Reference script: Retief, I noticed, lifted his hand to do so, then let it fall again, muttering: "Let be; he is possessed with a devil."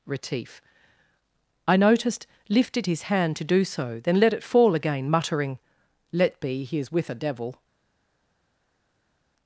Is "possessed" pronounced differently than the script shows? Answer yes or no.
yes